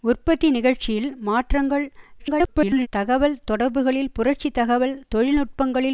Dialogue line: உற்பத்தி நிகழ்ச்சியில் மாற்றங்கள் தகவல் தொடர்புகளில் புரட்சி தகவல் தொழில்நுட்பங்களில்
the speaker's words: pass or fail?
fail